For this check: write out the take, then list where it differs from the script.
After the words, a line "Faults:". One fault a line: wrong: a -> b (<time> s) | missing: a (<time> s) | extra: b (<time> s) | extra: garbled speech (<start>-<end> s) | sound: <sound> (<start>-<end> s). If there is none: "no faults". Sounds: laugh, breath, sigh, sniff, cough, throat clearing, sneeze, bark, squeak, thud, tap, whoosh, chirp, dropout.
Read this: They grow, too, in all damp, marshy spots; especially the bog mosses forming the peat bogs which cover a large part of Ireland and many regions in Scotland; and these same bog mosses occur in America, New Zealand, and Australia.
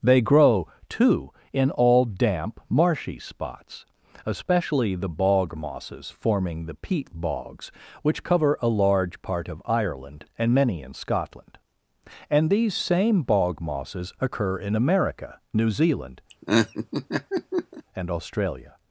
They grow, too, in all damp, marshy spots; especially the bog mosses forming the peat bogs which cover a large part of Ireland and many in Scotland; and these same bog mosses occur in America, New Zealand, and Australia.
Faults:
missing: regions (10.8 s)
sound: laugh (16.3-17.8 s)